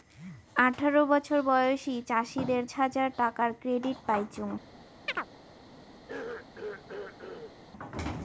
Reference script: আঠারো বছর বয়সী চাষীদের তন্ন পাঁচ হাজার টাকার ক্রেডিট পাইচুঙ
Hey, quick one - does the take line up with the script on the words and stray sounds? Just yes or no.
no